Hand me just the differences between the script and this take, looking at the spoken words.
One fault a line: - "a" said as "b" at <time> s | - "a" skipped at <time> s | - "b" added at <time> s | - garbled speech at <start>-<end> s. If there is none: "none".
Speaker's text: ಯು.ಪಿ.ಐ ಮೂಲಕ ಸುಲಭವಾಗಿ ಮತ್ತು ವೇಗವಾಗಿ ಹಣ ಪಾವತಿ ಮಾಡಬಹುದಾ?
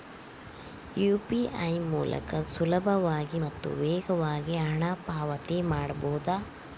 none